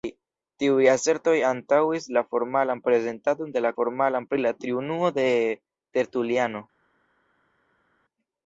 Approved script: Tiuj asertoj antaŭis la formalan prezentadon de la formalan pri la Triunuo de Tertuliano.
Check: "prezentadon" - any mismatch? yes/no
no